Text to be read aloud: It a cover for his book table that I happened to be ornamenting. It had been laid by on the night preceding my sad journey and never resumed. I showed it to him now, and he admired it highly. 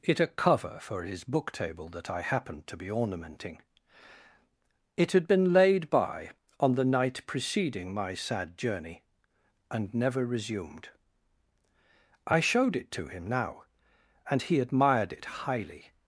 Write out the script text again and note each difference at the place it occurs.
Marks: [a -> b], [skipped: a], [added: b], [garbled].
It a cover for his book table that I happened to be ornamenting. It had been laid by on the night preceding my sad journey and never resumed. I showed it to him now, and he admired it highly.